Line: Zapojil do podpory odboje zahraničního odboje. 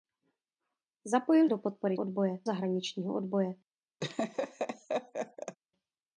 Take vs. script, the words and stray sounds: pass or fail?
fail